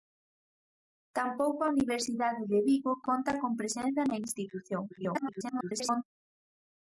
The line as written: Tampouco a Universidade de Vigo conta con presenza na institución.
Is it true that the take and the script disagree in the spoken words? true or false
true